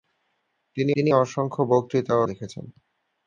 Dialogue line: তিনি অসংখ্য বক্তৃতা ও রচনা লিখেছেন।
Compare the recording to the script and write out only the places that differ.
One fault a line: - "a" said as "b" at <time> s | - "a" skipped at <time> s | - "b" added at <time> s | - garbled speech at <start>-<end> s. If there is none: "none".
- "তিনি" added at 1.0 s
- "রচনা" skipped at 2.2 s